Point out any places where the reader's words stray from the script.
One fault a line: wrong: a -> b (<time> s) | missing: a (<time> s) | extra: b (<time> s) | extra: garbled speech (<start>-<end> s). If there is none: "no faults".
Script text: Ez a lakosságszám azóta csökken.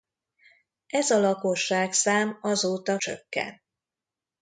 no faults